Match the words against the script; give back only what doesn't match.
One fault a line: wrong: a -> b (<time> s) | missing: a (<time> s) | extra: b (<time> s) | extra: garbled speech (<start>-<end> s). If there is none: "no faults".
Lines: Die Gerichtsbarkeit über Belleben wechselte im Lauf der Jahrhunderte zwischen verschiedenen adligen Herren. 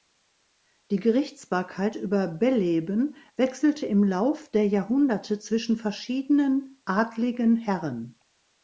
no faults